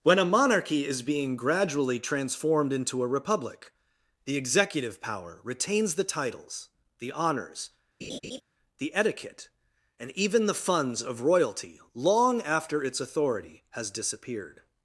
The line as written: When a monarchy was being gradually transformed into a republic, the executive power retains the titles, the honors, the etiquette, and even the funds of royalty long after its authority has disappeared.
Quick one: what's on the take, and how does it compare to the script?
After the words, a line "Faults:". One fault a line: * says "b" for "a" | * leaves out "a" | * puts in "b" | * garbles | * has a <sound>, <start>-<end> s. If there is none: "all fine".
When a monarchy is being gradually transformed into a republic, the executive power retains the titles, the honors, the etiquette, and even the funds of royalty long after its authority has disappeared.
Faults:
* says "is" for "was"
* has a laugh, 8.0-8.4 s